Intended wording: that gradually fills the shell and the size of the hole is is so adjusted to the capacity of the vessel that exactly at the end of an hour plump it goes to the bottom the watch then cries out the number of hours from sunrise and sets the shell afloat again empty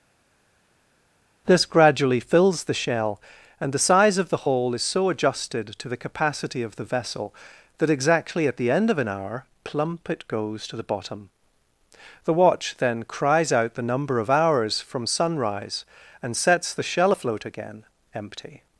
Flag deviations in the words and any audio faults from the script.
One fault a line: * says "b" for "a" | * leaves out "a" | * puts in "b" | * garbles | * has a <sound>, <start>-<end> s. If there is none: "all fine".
* says "this" for "that"
* leaves out "is"